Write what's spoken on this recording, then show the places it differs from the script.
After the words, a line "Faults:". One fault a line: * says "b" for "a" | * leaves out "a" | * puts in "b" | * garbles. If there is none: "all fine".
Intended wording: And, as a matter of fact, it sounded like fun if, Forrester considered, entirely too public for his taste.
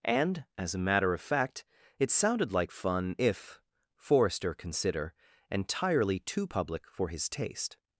And, as a matter of fact, it sounded like fun if, Forrester consider, entirely too public for his taste.
Faults:
* says "consider" for "considered"